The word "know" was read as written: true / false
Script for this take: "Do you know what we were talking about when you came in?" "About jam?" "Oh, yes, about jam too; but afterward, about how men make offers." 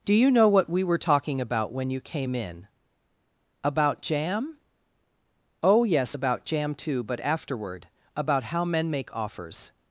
true